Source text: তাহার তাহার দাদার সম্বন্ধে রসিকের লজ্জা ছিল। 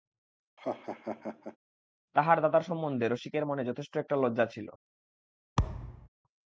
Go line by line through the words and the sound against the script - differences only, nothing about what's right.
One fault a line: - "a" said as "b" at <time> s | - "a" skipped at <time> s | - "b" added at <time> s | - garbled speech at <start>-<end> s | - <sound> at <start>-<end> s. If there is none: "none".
- laugh at 0.6-1.6 s
- "তাহার" skipped at 2.4 s
- "মনে যথেষ্ট একটা" added at 3.5 s
- thud at 5.6-6.1 s